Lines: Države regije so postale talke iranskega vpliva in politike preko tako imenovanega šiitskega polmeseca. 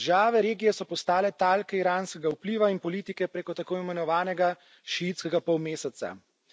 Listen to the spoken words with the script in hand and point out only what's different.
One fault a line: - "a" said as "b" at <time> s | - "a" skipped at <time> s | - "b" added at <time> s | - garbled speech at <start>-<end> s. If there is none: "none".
none